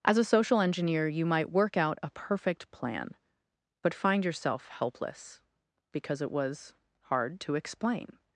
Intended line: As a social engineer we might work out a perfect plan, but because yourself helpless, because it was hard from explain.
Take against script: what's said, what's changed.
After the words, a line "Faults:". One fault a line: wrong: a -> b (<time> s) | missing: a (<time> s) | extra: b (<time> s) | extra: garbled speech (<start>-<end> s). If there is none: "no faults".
As a social engineer you might work out a perfect plan, but find yourself helpless, because it was hard to explain.
Faults:
wrong: we -> you (1.1 s)
wrong: because -> find (3.9 s)
wrong: from -> to (7.4 s)